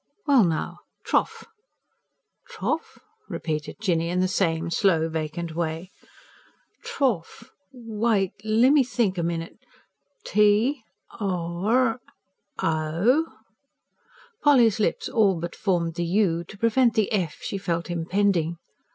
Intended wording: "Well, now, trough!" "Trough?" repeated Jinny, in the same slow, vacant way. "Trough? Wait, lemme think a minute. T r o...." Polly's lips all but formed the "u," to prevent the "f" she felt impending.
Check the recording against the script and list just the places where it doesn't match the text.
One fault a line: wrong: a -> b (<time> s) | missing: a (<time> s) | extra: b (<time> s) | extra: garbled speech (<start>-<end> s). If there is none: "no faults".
no faults